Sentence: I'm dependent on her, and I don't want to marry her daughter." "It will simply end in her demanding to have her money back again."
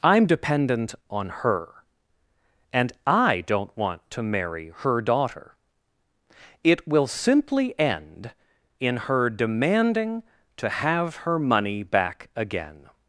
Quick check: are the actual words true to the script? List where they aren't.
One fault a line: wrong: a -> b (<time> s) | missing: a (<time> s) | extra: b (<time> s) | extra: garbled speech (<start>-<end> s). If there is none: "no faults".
no faults